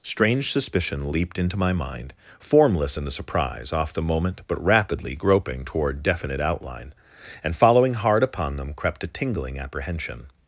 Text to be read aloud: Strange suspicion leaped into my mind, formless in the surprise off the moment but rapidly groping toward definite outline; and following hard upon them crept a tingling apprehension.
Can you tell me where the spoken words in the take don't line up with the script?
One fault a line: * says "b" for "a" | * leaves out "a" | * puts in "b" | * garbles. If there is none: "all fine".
all fine